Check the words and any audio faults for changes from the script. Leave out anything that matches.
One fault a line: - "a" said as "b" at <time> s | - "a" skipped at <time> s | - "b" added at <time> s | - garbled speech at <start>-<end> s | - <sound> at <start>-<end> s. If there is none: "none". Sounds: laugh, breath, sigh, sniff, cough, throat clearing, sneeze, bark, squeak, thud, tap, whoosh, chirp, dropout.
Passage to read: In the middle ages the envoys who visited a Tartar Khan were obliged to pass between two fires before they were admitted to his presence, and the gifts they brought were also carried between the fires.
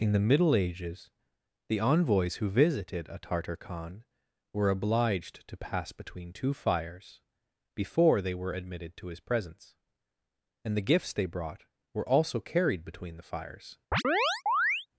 - chirp at 13.9-14.9 s